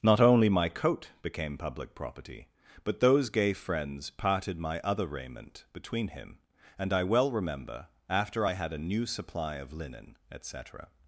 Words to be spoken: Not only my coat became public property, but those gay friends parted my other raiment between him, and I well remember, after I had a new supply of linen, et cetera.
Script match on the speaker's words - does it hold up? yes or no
yes